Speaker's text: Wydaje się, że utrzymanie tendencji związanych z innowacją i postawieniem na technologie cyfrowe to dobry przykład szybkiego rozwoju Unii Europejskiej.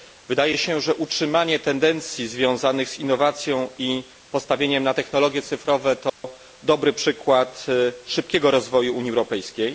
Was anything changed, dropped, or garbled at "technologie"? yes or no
no